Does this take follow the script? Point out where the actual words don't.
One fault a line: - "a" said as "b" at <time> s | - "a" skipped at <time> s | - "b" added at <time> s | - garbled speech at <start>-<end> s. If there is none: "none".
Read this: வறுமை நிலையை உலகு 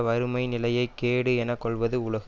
- "கேடு என கொள்வது" added at 0.9 s